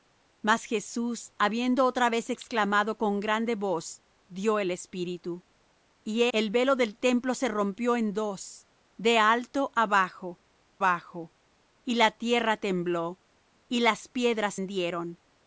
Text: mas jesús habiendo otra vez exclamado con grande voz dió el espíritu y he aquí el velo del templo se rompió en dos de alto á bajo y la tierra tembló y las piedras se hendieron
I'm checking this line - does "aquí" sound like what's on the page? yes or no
no